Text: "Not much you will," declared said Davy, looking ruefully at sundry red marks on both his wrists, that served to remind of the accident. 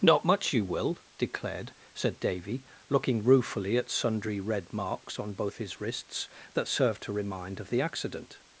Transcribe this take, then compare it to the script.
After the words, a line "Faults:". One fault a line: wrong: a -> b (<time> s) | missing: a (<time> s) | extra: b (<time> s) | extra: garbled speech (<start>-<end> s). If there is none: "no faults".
"Not much you will," declared said Davy, looking ruefully at sundry red marks on both his wrists, that served to remind of the accident.
Faults:
no faults